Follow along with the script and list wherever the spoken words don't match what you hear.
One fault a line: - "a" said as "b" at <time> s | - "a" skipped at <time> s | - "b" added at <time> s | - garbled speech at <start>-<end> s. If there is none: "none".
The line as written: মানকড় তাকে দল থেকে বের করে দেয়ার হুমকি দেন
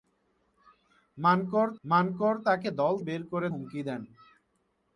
- "মানকড়" added at 1.8 s
- "থেকে" skipped at 2.9 s
- "দেয়ার" skipped at 3.5 s